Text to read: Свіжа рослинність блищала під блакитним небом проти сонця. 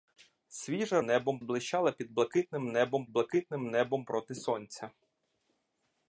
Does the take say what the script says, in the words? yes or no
no